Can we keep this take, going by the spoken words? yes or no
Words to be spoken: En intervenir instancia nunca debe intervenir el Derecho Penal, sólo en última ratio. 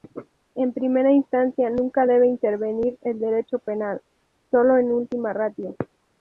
no